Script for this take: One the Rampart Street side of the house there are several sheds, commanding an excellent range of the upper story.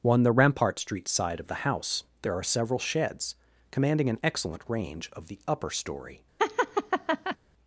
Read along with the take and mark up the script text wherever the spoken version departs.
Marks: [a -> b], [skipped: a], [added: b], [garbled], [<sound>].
One the Rampart Street side of the house there are several sheds, commanding an excellent range of the upper story. [laugh]